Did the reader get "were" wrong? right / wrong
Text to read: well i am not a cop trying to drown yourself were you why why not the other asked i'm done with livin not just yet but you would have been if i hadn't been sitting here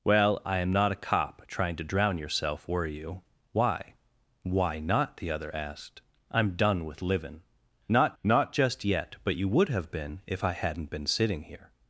right